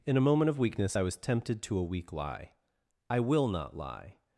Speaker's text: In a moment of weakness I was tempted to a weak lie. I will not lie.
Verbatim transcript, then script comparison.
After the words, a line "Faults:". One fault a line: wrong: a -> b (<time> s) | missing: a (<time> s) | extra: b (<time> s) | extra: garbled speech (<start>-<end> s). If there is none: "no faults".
In a moment of weakness I was tempted to a weak lie. I will not lie.
Faults:
no faults